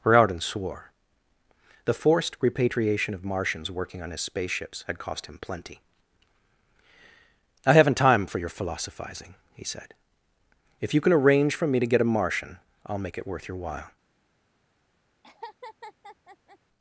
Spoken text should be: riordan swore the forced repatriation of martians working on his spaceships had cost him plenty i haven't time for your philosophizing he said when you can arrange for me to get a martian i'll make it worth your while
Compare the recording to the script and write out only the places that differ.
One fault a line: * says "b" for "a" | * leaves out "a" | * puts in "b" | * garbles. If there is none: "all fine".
* says "if" for "when"